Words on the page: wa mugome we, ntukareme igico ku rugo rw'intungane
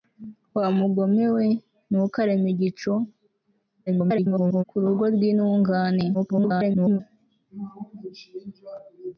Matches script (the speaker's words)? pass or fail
fail